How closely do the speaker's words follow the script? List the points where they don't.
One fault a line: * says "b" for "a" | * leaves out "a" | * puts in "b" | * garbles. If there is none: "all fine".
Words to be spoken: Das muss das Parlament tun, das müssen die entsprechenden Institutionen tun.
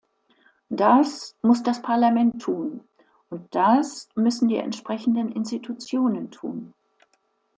* puts in "und"